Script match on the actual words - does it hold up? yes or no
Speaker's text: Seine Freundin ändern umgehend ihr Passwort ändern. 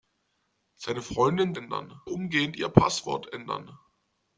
yes